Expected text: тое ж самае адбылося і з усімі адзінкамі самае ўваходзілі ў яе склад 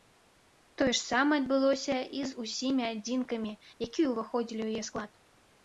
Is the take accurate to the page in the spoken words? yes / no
no